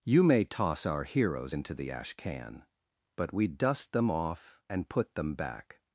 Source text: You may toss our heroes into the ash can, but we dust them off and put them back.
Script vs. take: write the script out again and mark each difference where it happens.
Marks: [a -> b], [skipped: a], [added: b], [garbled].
You may toss our heroes into the ash can, but we dust them off and put them back.